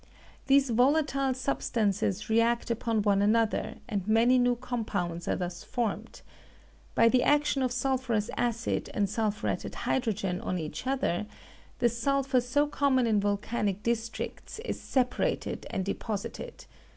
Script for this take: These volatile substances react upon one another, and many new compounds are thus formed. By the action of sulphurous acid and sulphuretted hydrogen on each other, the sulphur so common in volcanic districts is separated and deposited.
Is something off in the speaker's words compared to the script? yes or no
no